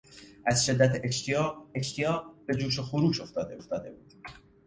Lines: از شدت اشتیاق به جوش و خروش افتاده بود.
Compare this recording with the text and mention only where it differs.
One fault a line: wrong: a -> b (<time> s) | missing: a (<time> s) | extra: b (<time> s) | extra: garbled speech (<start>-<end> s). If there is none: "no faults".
extra: اشتیاق (1.7 s)
extra: افتاده (3.6 s)